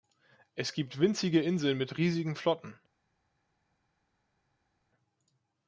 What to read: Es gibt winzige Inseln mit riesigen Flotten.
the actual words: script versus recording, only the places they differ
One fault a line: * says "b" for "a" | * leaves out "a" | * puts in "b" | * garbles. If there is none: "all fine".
all fine